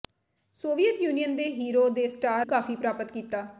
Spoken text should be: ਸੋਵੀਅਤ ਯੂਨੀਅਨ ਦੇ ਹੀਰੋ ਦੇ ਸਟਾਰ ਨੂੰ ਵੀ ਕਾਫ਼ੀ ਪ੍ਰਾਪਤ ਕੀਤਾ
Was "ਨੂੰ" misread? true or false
true